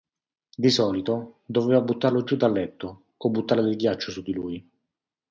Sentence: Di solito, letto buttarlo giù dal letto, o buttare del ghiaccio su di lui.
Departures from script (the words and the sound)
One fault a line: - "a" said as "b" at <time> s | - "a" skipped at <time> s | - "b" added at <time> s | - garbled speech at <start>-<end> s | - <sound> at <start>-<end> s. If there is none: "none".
- "letto" said as "doveva" at 1.4 s